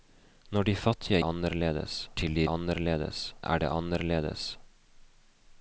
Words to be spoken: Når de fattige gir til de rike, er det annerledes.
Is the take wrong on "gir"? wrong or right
wrong